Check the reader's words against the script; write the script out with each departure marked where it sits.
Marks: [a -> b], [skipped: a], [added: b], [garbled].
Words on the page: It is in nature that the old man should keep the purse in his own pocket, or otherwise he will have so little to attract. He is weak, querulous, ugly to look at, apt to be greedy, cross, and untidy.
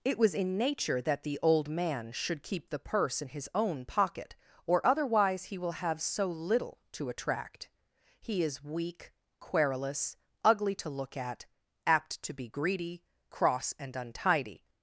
It [is -> was] in nature that the old man should keep the purse in his own pocket, or otherwise he will have so little to attract. He is weak, querulous, ugly to look at, apt to be greedy, cross, and untidy.